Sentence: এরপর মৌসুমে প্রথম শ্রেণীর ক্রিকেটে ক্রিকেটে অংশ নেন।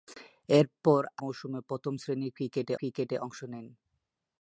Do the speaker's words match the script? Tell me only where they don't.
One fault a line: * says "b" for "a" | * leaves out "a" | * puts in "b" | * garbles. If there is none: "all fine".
all fine